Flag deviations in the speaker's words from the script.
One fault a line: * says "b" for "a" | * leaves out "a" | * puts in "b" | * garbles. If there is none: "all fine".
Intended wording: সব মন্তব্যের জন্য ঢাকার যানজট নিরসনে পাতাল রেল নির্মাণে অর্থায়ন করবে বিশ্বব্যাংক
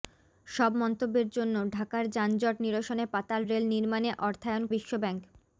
* leaves out "করবে"